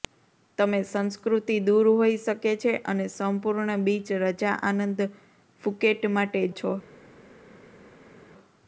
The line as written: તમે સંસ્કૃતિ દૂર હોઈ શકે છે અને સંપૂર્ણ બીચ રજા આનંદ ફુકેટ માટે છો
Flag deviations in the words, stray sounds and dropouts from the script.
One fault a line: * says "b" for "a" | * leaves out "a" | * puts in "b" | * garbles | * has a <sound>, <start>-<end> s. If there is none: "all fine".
all fine